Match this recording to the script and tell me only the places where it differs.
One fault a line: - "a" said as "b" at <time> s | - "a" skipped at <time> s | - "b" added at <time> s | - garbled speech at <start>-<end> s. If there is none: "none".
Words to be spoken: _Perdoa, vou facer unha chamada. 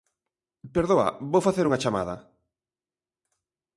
none